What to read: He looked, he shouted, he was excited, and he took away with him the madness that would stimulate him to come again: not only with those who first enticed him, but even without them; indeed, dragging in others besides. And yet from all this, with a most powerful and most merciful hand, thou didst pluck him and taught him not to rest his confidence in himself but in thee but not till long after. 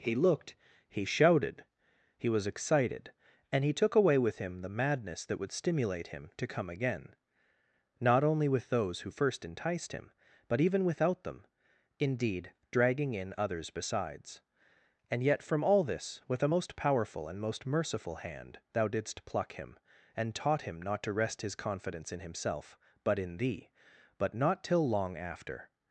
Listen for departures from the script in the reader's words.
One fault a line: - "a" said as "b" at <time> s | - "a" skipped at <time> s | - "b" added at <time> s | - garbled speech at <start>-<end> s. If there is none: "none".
none